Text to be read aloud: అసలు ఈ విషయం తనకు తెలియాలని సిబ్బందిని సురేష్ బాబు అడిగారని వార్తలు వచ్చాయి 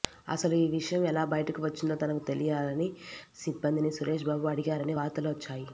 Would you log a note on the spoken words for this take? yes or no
yes